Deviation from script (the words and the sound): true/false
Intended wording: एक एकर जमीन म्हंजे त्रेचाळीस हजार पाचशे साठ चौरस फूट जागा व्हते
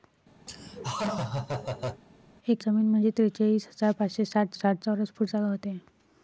true